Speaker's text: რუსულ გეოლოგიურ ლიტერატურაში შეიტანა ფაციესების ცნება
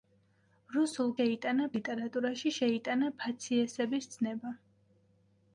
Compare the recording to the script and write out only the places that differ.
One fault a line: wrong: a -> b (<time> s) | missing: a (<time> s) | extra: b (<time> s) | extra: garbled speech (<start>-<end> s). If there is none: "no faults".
wrong: გეოლოგიურ -> შეიტანა (1.2 s)